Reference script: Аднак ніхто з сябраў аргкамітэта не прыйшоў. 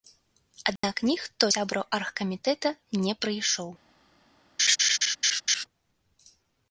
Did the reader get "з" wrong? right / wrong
wrong